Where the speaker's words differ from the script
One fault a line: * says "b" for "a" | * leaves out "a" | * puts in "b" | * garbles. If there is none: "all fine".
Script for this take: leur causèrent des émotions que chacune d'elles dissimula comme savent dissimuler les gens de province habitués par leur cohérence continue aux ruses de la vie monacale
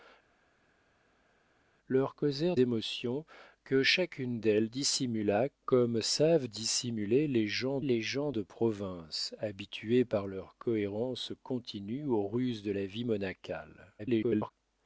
* leaves out "des"
* puts in "les gens"
* garbles